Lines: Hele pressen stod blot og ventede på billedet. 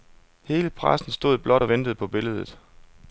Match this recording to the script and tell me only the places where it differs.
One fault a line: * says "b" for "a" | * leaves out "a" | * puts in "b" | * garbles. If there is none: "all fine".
all fine